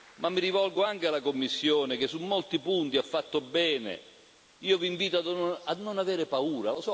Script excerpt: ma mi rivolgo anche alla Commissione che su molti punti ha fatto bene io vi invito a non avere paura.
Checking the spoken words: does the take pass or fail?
pass